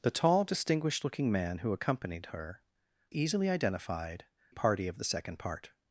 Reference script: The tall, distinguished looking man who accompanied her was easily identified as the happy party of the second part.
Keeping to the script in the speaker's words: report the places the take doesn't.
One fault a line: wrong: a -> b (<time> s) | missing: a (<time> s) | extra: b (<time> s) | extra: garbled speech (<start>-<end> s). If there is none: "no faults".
missing: was (2.6 s)
missing: as the happy (4.2 s)